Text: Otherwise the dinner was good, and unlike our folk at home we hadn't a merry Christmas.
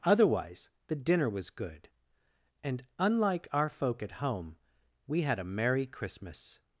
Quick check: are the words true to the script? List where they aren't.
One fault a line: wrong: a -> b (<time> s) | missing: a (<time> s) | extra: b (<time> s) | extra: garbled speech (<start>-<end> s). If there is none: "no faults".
wrong: hadn't -> had (5.2 s)